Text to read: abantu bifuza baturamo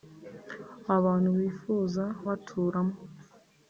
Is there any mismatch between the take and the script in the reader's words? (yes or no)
no